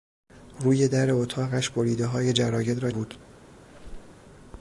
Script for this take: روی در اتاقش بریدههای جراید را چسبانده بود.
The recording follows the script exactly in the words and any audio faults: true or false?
false